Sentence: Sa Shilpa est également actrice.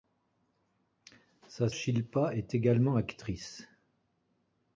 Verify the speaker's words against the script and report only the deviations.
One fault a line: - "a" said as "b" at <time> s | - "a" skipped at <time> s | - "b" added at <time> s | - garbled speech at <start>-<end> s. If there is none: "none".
none